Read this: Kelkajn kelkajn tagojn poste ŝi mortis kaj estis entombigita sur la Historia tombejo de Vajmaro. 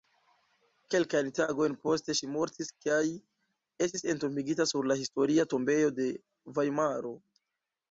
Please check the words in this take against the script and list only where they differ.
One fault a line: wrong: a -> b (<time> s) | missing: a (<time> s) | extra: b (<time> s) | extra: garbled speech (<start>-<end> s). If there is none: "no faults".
missing: kelkajn (1.3 s)